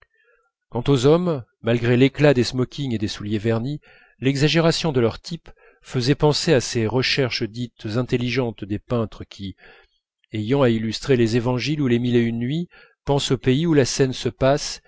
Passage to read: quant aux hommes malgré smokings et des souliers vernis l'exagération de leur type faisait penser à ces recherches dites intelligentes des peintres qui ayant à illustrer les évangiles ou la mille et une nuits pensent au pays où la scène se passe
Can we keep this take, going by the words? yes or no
no